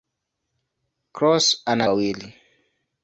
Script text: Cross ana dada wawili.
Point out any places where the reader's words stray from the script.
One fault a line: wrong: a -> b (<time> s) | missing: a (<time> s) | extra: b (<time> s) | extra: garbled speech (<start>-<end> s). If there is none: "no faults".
missing: dada (1.9 s)